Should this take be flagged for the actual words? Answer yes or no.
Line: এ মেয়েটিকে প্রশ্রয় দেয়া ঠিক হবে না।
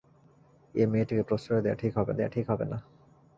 yes